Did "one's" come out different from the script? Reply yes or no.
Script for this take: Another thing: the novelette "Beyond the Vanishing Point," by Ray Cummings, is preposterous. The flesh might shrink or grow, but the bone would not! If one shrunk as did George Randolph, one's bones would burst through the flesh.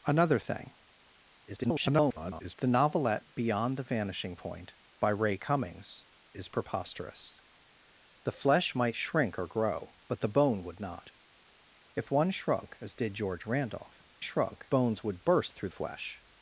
yes